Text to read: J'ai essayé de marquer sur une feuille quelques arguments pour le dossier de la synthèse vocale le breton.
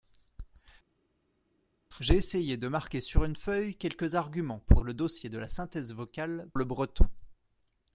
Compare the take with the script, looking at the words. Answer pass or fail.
pass